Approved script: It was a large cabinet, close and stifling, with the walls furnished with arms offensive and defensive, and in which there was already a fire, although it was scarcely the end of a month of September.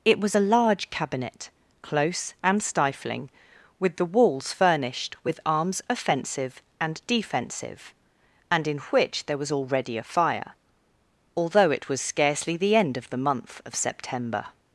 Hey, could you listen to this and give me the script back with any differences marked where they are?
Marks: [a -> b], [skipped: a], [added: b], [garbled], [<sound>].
It was a large cabinet, close and stifling, with the walls furnished with arms offensive and defensive, and in which there was already a fire, although it was scarcely the end of [a -> the] month of September.